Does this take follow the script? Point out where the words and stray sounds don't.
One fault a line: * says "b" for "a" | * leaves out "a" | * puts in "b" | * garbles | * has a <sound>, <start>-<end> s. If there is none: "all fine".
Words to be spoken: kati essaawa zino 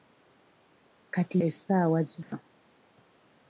* has a dropout, 2.2-2.3 s